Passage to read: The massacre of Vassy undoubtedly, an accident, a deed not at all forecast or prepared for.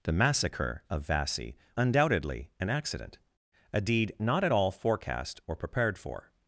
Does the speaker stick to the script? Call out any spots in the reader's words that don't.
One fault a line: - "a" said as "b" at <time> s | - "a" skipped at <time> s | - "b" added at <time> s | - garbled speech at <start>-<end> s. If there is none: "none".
none